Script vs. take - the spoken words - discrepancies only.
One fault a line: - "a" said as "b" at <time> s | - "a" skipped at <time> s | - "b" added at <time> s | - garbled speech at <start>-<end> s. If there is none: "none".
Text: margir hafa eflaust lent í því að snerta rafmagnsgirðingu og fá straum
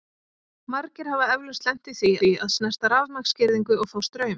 - "því" added at 2.2 s